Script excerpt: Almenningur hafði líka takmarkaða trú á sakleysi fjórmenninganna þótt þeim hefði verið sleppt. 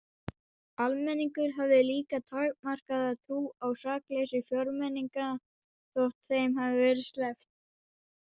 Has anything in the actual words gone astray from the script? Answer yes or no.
no